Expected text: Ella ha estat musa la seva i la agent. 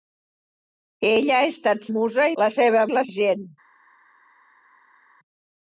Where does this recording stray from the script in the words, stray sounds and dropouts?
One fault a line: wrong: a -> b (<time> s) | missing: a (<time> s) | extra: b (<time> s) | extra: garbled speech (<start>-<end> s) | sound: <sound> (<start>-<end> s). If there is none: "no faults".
no faults